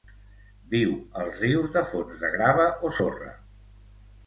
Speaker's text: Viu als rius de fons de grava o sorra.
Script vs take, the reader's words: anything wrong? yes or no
no